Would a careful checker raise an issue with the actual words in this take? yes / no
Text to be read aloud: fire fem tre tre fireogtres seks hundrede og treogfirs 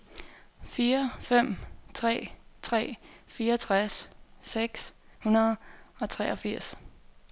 no